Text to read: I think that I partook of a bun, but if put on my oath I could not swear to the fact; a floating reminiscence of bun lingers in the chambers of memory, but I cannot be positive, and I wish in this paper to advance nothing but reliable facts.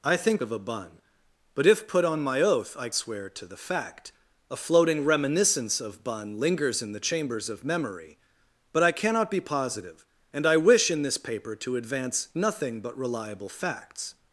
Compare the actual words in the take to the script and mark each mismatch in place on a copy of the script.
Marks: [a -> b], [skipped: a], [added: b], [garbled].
I think [skipped: that I partook] of a bun, but if put on my oath I [skipped: could not] swear to the fact; a floating reminiscence of bun lingers in the chambers of memory, but I cannot be positive, and I wish in this paper to advance nothing but reliable facts.